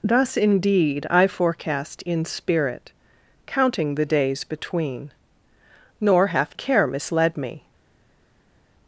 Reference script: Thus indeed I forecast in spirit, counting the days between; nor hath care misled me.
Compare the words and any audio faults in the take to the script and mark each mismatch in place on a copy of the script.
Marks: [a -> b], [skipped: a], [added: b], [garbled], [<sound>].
Thus indeed I forecast in spirit, counting the days between; nor hath care misled me.